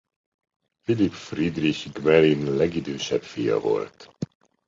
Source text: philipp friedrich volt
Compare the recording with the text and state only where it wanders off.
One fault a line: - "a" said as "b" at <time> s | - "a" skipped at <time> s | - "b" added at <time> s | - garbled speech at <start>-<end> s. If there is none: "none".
- "gmelin legidősebb fia" added at 1.9 s